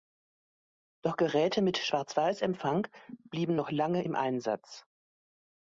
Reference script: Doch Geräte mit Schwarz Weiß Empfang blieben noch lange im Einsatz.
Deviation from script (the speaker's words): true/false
false